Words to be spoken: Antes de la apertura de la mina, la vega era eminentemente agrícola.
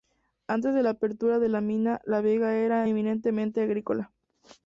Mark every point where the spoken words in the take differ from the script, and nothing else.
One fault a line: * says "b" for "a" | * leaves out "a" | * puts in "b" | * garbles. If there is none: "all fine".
all fine